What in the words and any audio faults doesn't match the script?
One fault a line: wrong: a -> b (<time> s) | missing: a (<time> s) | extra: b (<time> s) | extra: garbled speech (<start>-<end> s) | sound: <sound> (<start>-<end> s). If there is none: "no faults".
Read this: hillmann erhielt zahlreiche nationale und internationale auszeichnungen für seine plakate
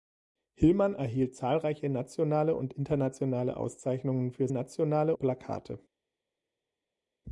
wrong: seine -> nationale (4.5 s)